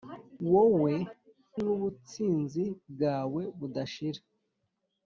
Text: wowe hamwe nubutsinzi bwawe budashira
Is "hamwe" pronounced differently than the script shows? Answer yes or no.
yes